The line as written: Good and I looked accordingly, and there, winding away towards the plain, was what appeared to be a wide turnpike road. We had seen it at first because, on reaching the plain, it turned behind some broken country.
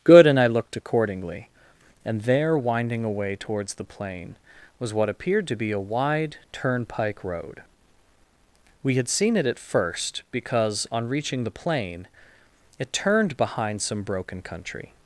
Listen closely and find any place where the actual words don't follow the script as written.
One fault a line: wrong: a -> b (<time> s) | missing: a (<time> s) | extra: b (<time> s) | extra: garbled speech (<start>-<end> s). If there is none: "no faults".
no faults